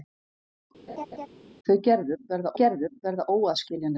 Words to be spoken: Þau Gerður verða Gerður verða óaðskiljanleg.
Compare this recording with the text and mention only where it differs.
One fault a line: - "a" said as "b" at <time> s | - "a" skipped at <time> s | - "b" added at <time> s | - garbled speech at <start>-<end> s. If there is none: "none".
none